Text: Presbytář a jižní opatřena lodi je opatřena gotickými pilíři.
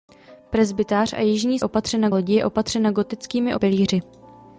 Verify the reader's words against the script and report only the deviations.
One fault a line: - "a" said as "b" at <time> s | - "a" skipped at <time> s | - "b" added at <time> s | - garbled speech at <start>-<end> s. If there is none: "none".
none